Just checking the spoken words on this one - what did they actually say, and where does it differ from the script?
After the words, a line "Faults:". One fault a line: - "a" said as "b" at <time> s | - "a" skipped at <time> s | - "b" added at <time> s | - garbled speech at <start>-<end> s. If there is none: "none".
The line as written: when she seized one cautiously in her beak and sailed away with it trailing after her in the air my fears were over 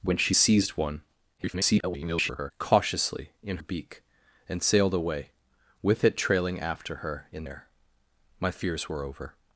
when she seized one [garbled] cautiously in beak and sailed away with it trailing after her in air my fears were over
Faults:
- garbled speech at 1.4-2.5 s
- "her" skipped at 3.6 s
- "the" skipped at 7.4 s